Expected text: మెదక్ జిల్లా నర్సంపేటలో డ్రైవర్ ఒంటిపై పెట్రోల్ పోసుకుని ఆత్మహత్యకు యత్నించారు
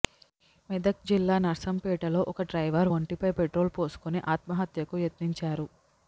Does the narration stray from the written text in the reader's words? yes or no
yes